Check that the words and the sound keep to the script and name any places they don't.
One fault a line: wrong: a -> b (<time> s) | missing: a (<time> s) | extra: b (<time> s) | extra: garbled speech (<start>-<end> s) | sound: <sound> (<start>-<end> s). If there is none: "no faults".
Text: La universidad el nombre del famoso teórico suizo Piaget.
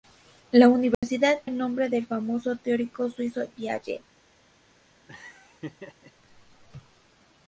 sound: dropout (0.9-1.0 s)
sound: laugh (5.1-6.1 s)